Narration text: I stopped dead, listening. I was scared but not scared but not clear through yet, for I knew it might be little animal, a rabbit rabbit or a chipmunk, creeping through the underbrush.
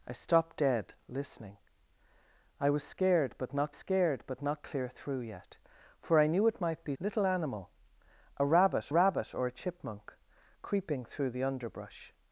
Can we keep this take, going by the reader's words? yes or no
yes